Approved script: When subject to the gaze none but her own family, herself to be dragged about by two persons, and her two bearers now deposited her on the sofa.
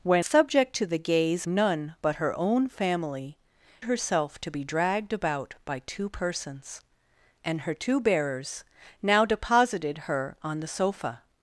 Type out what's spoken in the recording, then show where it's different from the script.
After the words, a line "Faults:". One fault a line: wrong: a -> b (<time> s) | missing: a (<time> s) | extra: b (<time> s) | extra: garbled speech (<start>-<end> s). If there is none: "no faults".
When subject to the gaze none but her own family, herself to be dragged about by two persons, and her two bearers now deposited her on the sofa.
Faults:
no faults